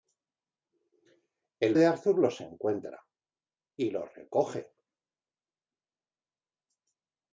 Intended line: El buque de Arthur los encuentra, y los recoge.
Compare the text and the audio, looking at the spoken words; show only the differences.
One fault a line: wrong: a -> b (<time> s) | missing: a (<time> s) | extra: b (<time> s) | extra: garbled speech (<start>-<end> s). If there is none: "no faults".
missing: buque (1.8 s)